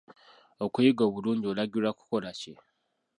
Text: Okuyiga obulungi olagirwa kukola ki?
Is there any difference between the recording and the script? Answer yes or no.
no